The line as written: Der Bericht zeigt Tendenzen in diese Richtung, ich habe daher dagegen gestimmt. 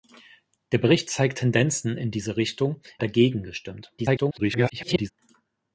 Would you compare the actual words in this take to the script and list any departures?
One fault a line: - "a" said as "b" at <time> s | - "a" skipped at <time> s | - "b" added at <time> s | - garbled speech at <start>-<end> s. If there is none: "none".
- "ich habe daher" skipped at 2.8 s
- garbled speech at 4.0-5.1 s